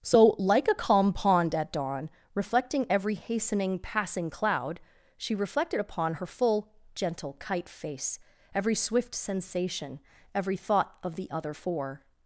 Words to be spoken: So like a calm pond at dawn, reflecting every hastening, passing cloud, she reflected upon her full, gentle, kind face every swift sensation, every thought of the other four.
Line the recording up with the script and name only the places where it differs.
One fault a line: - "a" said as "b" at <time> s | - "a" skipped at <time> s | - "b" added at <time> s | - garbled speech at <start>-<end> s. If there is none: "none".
- "kind" said as "kite" at 7.4 s